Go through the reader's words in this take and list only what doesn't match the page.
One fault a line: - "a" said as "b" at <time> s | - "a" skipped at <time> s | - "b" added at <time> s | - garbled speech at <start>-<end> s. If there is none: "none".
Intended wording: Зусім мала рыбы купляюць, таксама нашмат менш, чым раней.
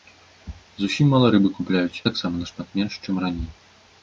none